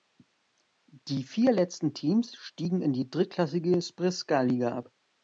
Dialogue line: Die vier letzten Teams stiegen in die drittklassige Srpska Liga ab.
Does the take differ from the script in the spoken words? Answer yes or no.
no